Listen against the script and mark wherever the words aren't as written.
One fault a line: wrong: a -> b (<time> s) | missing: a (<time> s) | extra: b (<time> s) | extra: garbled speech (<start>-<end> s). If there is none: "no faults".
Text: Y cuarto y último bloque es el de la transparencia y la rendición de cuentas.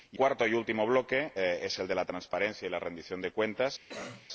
no faults